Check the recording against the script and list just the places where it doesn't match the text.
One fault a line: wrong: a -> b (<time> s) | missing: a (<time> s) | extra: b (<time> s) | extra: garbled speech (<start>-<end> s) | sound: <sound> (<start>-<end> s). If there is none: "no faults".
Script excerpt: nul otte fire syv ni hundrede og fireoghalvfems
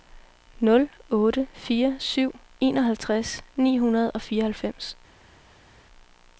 extra: enoghalvtreds (2.6 s)